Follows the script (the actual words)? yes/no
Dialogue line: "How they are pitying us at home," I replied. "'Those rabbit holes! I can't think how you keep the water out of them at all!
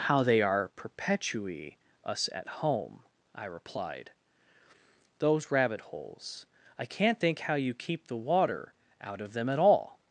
no